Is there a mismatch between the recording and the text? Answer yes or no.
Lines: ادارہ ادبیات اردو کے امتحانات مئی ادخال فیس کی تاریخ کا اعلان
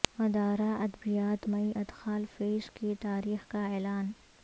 yes